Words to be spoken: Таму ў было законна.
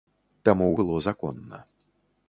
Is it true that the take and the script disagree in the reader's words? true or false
false